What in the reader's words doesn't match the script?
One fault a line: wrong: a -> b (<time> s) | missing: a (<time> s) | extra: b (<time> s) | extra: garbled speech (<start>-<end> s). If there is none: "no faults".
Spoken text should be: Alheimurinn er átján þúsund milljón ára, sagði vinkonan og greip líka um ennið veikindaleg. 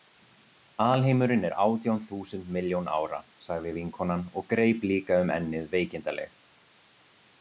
no faults